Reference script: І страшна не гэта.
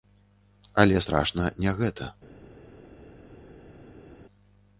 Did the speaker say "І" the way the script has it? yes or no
no